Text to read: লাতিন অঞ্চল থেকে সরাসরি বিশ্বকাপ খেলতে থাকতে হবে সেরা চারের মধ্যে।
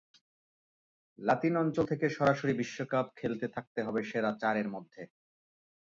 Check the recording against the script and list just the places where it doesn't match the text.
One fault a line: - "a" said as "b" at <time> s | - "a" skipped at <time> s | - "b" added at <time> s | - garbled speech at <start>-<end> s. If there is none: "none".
none